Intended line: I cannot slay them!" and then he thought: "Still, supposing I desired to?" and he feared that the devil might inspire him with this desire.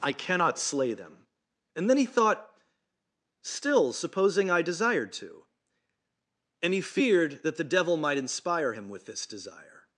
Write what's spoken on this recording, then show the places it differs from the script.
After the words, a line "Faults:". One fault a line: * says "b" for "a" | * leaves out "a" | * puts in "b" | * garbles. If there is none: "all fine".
I cannot slay them!" and then he thought: "Still, supposing I desired to?" and he feared that the devil might inspire him with this desire.
Faults:
all fine